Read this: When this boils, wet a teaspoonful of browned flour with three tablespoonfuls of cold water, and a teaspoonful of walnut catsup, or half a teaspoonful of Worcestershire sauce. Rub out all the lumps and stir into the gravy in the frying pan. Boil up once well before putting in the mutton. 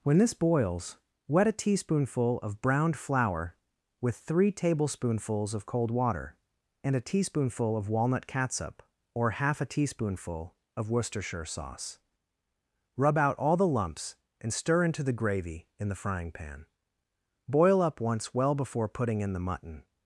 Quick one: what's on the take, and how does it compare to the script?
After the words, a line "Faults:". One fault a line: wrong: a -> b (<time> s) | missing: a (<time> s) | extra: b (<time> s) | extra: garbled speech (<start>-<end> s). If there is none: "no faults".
When this boils, wet a teaspoonful of browned flour with three tablespoonfuls of cold water, and a teaspoonful of walnut catsup, or half a teaspoonful of Worcestershire sauce. Rub out all the lumps and stir into the gravy in the frying pan. Boil up once well before putting in the mutton.
Faults:
no faults